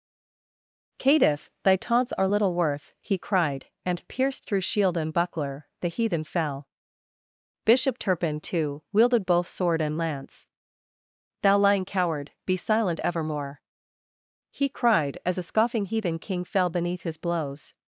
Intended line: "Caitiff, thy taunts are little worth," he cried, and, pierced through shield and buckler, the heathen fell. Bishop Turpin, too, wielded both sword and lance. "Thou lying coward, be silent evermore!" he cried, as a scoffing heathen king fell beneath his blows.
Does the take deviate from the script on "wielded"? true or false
false